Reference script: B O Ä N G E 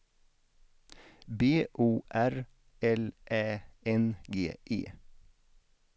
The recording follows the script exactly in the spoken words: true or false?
false